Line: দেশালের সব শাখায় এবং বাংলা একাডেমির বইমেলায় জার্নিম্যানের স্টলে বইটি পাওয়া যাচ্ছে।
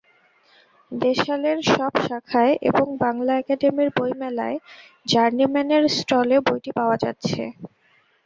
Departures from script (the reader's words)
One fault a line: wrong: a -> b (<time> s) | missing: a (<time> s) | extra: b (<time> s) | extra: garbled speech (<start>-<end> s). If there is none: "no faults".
no faults